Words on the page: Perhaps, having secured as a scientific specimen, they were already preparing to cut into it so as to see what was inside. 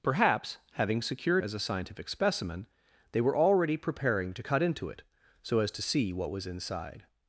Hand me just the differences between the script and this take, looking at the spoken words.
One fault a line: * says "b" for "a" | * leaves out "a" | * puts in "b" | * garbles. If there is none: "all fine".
all fine